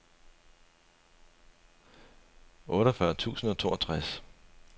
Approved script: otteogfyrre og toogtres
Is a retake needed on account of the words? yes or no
yes